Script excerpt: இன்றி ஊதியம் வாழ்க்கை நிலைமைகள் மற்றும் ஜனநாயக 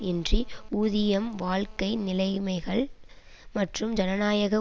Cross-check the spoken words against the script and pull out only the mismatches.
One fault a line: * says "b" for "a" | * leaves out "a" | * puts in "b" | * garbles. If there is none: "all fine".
all fine